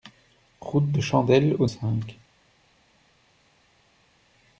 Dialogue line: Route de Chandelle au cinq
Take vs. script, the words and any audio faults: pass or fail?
pass